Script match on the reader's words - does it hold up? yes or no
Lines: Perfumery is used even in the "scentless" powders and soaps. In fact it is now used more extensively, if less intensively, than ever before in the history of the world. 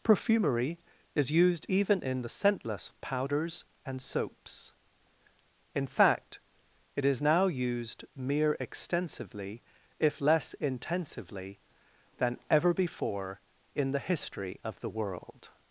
no